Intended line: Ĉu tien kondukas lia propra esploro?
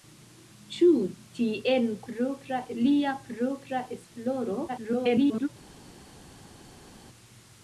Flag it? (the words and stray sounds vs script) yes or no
yes